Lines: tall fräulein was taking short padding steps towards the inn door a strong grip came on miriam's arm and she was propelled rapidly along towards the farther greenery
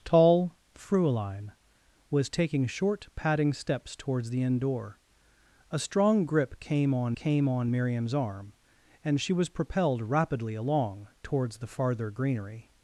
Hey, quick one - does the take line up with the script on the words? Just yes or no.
no